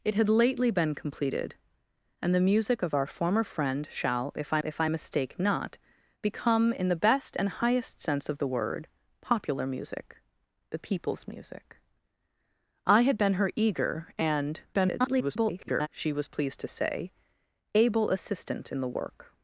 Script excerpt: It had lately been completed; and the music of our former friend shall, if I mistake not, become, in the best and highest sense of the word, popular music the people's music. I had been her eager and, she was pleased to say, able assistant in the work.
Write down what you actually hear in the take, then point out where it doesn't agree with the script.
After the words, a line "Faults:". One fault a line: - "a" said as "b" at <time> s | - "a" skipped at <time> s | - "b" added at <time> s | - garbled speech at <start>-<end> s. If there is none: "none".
It had lately been completed; and the music of our former friend shall, if I if I mistake not, become, in the best and highest sense of the word, popular music the people's music. I had been her eager and, [garbled] she was pleased to say, able assistant in the work.
Faults:
- "if I" added at 4.6 s
- garbled speech at 14.7-15.9 s